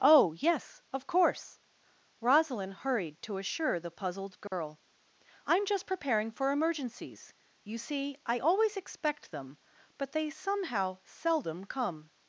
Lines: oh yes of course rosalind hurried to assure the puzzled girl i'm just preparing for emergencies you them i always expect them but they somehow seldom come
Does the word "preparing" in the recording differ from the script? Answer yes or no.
no